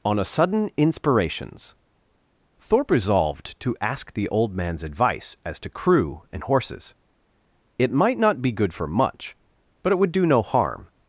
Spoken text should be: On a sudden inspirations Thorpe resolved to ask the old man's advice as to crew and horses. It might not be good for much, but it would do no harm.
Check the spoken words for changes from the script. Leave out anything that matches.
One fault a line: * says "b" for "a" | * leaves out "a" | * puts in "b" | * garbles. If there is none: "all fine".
all fine